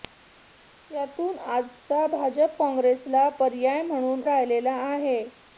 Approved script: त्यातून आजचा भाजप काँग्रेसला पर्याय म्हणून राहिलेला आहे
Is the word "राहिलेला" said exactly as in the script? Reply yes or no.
yes